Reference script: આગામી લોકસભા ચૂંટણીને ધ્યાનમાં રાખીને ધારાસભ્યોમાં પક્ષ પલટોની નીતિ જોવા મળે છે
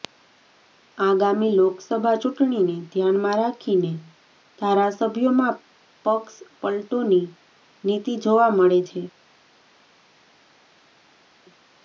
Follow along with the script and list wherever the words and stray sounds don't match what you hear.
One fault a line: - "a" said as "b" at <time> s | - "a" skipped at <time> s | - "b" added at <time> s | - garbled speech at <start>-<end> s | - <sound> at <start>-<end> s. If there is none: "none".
none